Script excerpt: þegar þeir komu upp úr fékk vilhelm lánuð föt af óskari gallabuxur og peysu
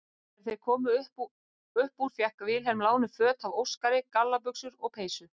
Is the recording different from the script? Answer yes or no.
no